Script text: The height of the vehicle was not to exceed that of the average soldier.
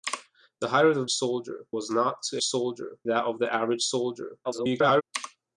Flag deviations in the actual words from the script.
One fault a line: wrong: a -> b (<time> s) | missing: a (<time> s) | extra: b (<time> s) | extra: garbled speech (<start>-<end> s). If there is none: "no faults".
wrong: vehicle -> soldier (1.1 s)
wrong: exceed -> soldier (2.4 s)
extra: garbled speech (4.4-5.0 s)